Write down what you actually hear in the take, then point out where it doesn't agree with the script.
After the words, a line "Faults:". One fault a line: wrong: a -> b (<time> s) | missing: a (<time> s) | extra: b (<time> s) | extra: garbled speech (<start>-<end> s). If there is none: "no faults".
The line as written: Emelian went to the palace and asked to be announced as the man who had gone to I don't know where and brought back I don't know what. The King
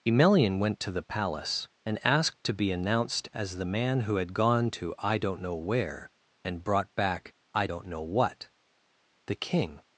Emelian went to the palace and asked to be announced as the man who had gone to I don't know where and brought back I don't know what. The King
Faults:
no faults